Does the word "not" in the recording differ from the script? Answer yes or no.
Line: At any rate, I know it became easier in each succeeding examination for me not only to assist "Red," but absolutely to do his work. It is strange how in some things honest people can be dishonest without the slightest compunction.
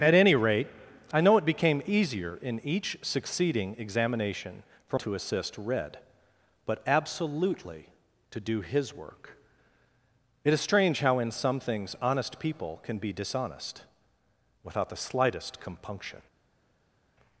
yes